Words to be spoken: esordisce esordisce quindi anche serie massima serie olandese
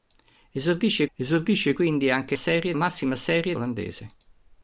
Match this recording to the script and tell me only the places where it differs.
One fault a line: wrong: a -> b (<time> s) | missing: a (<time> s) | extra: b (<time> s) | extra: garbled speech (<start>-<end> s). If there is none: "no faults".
no faults